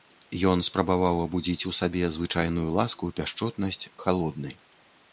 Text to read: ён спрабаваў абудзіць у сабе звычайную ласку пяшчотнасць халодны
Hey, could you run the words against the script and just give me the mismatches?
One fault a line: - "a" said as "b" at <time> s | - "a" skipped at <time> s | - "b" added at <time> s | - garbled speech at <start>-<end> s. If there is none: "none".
none